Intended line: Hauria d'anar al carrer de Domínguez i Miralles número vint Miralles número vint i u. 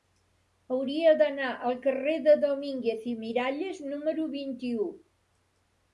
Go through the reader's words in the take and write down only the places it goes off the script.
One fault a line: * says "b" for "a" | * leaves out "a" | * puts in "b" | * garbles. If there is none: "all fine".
* leaves out "Miralles número vint"